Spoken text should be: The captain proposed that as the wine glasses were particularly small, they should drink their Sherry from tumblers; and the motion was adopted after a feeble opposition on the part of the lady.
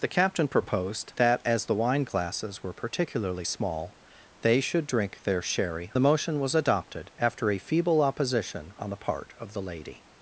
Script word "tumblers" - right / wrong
wrong